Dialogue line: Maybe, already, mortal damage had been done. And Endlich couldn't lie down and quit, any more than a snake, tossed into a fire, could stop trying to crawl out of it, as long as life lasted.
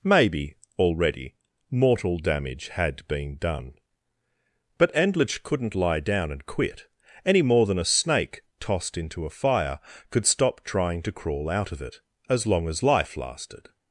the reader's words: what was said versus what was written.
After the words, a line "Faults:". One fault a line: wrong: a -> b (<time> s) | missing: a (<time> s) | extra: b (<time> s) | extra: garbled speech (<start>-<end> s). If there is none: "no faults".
Maybe, already, mortal damage had been done. But Endlich couldn't lie down and quit, any more than a snake, tossed into a fire, could stop trying to crawl out of it, as long as life lasted.
Faults:
wrong: And -> But (4.8 s)